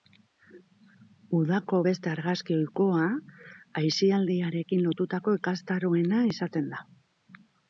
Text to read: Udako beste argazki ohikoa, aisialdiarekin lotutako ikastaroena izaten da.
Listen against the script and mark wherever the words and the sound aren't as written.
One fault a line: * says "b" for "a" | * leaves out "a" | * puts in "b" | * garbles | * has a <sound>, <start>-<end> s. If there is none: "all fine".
all fine